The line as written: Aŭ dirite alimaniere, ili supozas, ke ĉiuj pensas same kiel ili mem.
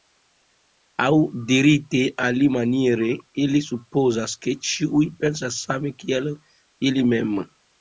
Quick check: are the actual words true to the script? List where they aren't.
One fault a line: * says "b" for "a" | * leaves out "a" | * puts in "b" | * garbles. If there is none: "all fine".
all fine